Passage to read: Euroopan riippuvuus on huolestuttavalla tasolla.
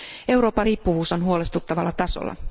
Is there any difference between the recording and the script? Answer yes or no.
no